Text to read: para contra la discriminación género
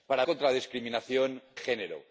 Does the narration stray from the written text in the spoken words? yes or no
no